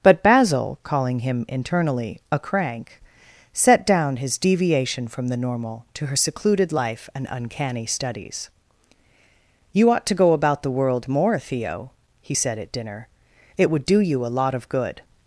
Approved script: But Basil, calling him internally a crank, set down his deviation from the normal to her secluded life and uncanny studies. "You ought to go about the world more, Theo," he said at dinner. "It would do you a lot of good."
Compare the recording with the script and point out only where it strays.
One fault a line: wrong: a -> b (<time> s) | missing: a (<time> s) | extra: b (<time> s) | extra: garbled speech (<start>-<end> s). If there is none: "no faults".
no faults